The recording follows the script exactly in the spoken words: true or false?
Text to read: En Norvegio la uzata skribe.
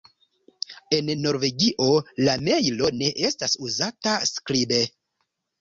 false